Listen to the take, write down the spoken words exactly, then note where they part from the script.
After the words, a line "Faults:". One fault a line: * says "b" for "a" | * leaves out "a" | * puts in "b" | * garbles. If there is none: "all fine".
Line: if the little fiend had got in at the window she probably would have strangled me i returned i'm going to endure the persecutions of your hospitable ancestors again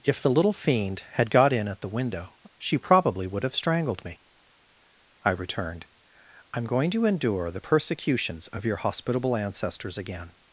if the little fiend had got in at the window she probably would have strangled me i returned i'm going to endure the persecutions of your hospitable ancestors again
Faults:
all fine